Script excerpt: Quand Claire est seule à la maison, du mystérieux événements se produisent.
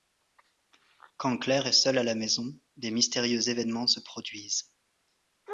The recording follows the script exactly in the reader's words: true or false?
false